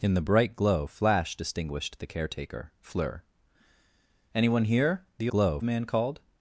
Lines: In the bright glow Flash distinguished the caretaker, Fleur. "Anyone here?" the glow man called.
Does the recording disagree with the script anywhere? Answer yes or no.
no